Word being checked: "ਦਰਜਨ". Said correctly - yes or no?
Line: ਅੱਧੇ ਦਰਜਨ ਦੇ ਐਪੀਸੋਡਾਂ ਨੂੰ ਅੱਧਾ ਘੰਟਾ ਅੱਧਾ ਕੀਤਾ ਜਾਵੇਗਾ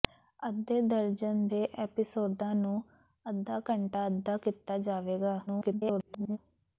yes